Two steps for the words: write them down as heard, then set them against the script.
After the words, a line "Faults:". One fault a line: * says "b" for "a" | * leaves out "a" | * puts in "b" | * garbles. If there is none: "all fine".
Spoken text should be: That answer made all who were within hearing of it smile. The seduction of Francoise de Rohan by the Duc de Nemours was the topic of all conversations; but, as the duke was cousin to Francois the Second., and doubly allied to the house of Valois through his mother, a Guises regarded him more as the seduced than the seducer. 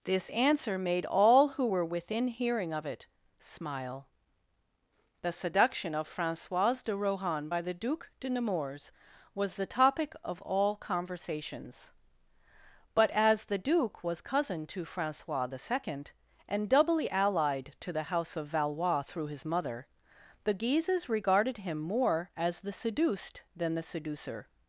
This answer made all who were within hearing of it smile. The seduction of Francoise de Rohan by the Duc de Nemours was the topic of all conversations; but, as the duke was cousin to Francois the Second., and doubly allied to the house of Valois through his mother, the Guises regarded him more as the seduced than the seducer.
Faults:
* says "This" for "That"
* says "the" for "a"